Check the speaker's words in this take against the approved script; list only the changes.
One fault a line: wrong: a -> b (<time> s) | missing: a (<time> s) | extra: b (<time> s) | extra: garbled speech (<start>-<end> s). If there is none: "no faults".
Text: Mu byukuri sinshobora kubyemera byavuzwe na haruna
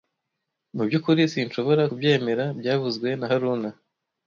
no faults